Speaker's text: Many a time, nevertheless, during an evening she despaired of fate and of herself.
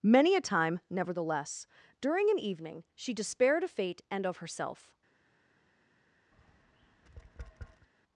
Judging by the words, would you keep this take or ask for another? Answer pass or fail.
pass